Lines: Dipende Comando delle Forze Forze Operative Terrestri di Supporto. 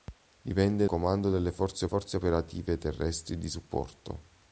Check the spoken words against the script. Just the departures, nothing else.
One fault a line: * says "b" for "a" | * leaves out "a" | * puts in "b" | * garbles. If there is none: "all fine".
all fine